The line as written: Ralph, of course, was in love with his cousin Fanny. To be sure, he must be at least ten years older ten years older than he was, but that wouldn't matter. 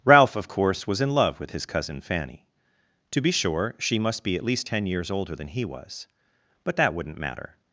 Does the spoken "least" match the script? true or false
true